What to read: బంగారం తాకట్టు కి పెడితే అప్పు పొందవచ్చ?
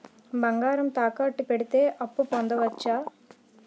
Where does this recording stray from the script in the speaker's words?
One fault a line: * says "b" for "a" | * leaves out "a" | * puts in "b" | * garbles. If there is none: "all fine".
* leaves out "కి"